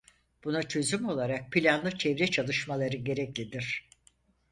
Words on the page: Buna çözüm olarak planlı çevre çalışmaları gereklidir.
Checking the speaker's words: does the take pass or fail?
pass